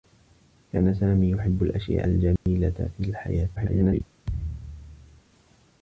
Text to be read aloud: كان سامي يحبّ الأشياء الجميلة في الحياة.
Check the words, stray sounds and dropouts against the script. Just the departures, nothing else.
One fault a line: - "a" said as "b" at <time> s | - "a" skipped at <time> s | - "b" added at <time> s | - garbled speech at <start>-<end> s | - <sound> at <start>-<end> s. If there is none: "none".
- dropout at 2.4-2.5 s
- garbled speech at 3.6-4.0 s
- thud at 4.2-5.2 s